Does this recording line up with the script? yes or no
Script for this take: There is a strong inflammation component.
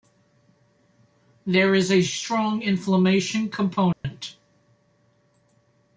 yes